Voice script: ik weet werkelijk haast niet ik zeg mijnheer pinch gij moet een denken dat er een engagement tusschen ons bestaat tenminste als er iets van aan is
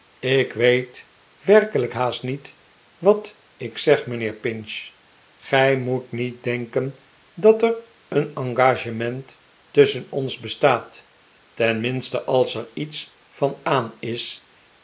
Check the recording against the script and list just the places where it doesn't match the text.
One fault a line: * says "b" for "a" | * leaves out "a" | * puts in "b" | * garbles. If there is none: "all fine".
* puts in "wat"
* says "niet" for "een"